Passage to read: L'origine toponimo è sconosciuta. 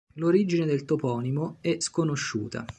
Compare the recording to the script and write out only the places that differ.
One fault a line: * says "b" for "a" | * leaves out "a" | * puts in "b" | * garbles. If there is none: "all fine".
* puts in "del"